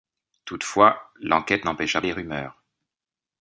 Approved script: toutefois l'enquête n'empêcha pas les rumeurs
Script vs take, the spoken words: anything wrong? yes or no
yes